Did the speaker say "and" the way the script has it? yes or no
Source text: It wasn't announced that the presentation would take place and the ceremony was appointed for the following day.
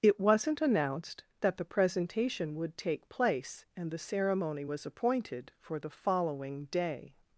yes